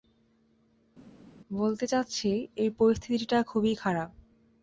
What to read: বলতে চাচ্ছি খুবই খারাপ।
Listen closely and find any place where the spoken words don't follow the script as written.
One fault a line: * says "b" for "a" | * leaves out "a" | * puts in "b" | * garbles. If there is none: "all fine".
* puts in "এই পরিস্থিতিটা"